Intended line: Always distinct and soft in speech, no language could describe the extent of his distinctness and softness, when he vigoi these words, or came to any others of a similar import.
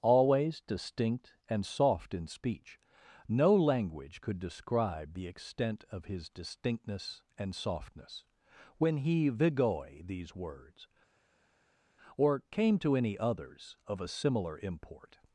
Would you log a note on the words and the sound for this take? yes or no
no